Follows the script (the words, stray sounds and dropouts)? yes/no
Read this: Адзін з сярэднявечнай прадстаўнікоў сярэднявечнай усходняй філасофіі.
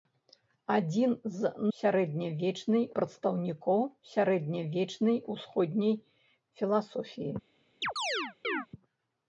no